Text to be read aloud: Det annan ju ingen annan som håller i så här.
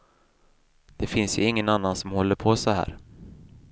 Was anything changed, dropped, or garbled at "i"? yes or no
yes